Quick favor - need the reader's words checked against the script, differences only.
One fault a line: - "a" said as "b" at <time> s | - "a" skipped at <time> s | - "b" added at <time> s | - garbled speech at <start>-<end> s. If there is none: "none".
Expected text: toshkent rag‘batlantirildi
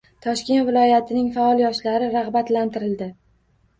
- "viloyatining faol yoshlari" added at 0.7 s